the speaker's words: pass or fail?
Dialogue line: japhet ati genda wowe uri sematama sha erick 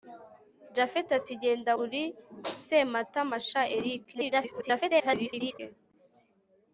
fail